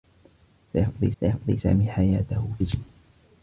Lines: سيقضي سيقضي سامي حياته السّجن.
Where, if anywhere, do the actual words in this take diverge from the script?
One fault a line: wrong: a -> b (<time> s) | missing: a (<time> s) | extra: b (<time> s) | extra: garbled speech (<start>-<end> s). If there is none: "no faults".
no faults